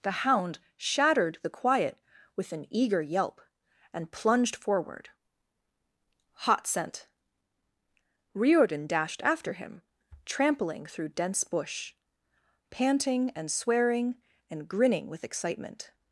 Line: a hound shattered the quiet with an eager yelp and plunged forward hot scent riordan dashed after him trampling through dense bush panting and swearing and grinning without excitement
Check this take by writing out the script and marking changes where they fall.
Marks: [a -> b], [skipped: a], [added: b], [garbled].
[a -> the] hound shattered the quiet with an eager yelp and plunged forward hot scent riordan dashed after him trampling through dense bush panting and swearing and grinning [without -> with] excitement